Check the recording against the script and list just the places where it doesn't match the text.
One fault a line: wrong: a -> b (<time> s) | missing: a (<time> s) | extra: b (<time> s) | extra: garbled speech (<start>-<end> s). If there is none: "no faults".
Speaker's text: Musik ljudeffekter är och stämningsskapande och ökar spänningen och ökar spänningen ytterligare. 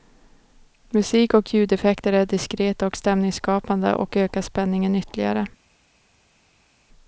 extra: och (1.3 s)
extra: diskreta (2.2 s)
missing: och ökar spänningen (5.0 s)